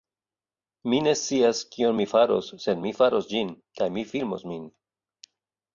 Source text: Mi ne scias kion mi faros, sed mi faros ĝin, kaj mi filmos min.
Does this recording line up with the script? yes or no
yes